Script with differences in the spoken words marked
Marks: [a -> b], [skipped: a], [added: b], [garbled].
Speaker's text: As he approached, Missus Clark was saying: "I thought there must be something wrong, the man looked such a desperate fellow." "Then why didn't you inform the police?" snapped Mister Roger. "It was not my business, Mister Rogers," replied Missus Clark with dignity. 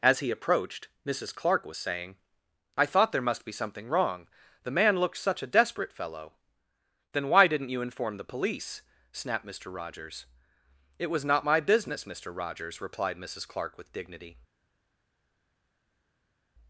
As he approached, Missus Clark was saying: "I thought there must be something wrong, the man looked such a desperate fellow." "Then why didn't you inform the police?" snapped Mister [Roger. -> Rogers] "It was not my business, Mister Rogers," replied Missus Clark with dignity.